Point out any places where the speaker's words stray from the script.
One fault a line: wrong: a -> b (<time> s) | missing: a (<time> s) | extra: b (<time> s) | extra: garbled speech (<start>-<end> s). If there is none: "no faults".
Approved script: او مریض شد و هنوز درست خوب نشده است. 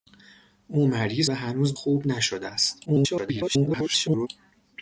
missing: شد (1.3 s)
missing: درست (1.8 s)
extra: garbled speech (2.8-4.3 s)